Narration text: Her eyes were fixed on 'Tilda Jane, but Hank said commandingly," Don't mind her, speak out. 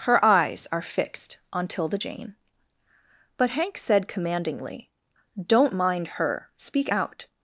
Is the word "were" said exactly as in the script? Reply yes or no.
no